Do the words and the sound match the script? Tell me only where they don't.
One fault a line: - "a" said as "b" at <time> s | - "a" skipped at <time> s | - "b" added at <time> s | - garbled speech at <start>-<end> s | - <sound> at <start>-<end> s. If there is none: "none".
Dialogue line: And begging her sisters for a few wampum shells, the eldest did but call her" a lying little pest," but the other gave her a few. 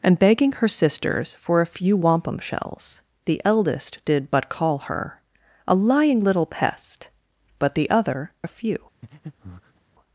- "gave her" skipped at 8.3 s
- breath at 9.0-9.8 s